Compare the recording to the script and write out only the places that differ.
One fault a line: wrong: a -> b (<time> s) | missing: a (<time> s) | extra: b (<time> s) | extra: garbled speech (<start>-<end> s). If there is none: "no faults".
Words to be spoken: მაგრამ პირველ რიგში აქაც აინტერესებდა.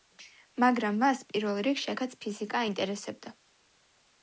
extra: მას (1.0 s)
extra: ფიზიკა (2.3 s)